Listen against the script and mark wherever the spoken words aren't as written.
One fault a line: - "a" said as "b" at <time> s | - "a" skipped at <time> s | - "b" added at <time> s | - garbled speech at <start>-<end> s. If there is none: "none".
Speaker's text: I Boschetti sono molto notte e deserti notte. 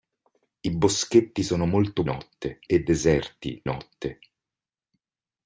none